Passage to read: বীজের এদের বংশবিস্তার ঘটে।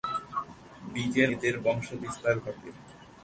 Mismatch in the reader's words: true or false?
false